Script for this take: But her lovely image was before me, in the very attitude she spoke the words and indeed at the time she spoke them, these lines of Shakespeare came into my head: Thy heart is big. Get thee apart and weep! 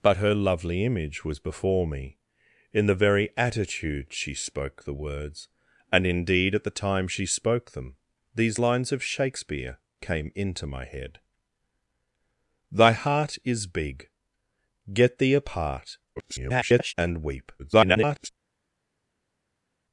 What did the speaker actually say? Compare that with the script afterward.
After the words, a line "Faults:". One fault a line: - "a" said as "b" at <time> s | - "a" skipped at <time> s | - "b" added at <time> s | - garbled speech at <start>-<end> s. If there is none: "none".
But her lovely image was before me, in the very attitude she spoke the words and indeed at the time she spoke them, these lines of Shakespeare came into my head: Thy heart is big. Get thee apart [garbled] and weep! [garbled]
Faults:
- garbled speech at 16.2-16.9 s
- garbled speech at 17.6-18.3 s